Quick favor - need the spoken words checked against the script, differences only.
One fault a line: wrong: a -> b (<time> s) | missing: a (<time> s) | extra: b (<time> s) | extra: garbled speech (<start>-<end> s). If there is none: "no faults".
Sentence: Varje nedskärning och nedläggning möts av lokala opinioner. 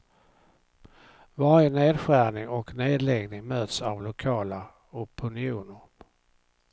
no faults